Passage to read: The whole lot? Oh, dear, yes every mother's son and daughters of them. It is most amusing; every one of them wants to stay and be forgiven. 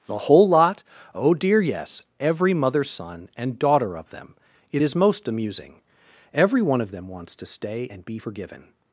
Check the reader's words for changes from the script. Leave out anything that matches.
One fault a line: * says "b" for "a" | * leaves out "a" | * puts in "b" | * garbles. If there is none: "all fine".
* says "daughter" for "daughters"